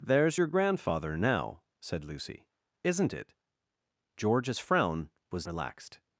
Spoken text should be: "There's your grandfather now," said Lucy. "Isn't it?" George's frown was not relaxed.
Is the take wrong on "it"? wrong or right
right